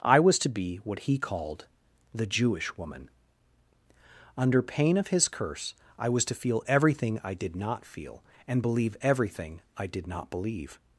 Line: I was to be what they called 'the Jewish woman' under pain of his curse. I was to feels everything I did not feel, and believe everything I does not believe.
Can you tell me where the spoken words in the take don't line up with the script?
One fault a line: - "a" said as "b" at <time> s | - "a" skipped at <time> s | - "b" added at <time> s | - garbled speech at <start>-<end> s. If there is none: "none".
- "they" said as "he" at 1.0 s
- "feels" said as "feel" at 6.3 s
- "does" said as "did" at 9.9 s